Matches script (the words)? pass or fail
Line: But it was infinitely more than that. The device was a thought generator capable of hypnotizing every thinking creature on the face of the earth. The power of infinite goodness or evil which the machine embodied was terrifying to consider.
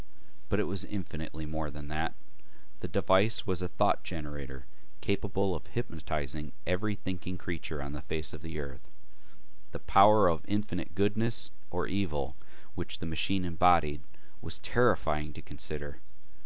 pass